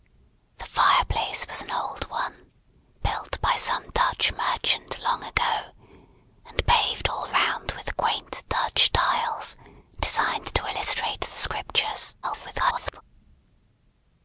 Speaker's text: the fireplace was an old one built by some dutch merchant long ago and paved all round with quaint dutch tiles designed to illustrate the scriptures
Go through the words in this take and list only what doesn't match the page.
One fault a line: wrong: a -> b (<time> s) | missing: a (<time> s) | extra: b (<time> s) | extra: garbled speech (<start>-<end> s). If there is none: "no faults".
extra: garbled speech (12.2-13.0 s)